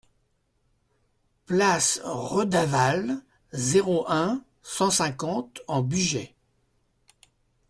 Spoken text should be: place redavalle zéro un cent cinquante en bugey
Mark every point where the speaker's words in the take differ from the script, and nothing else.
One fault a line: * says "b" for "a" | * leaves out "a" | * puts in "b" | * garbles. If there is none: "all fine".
all fine